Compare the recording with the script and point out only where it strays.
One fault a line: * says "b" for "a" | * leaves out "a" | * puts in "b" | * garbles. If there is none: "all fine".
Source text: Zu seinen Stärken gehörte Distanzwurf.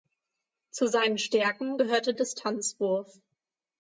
all fine